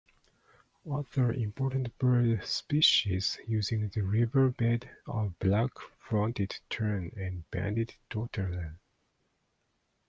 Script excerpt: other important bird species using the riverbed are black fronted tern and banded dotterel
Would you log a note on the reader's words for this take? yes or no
no